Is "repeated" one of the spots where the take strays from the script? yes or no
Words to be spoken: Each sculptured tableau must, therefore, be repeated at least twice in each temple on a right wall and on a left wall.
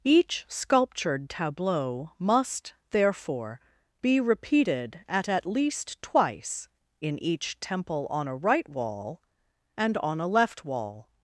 no